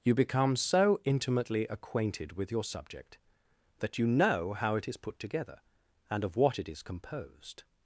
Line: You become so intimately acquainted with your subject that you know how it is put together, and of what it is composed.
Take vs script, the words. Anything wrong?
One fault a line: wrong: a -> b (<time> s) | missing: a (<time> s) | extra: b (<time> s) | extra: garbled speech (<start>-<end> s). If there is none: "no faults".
no faults